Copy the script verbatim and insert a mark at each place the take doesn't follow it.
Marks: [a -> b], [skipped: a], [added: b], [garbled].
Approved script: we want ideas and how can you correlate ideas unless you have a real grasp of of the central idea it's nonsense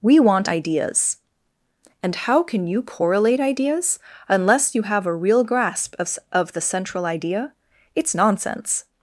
we want ideas and how can you correlate ideas unless you have a real grasp of of the central idea it's nonsense